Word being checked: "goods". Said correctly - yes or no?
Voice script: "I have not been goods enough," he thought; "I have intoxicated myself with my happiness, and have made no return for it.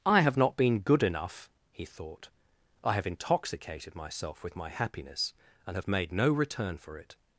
no